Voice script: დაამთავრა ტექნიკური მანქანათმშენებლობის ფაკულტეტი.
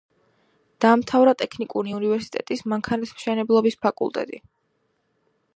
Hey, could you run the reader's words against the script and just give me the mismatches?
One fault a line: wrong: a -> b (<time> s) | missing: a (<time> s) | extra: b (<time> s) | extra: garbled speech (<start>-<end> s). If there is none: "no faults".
extra: უნივერსიტეტის (2.0 s)